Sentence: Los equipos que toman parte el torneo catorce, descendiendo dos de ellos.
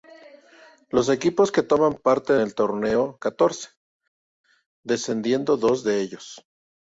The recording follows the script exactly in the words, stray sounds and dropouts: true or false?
true